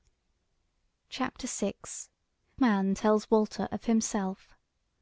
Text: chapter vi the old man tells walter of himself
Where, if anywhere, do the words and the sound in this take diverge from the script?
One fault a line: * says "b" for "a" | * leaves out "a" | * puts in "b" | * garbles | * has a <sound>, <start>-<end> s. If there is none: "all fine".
* leaves out "the old"